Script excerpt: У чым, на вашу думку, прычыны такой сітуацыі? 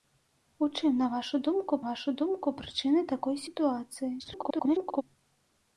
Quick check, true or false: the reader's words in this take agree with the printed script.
false